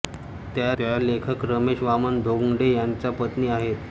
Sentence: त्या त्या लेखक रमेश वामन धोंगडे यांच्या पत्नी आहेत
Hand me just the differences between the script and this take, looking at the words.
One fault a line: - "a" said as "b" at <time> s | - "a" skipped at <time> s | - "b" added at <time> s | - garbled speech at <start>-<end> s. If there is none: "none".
none